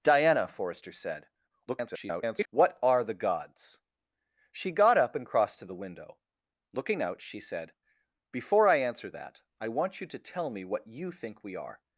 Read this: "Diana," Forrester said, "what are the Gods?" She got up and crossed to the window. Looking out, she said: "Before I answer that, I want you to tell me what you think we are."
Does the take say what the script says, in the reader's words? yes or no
no